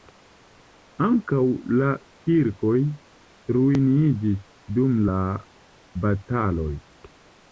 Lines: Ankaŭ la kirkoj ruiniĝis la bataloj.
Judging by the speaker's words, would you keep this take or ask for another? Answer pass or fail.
fail